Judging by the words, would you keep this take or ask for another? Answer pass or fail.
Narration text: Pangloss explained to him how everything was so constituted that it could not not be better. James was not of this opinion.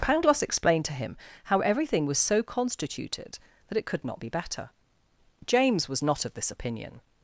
fail